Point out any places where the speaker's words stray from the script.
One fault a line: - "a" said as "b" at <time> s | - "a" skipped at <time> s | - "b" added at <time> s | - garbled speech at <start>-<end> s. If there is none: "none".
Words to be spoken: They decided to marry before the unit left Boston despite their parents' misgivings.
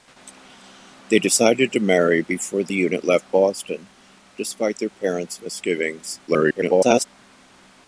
- garbled speech at 6.3-7.0 s